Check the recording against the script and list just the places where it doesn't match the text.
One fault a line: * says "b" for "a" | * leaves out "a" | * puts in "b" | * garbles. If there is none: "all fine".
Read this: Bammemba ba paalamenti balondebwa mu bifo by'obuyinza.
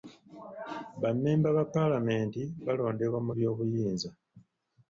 * leaves out "bifo"